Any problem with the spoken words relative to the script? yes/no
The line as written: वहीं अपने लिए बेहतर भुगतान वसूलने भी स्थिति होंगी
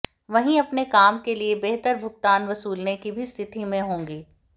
yes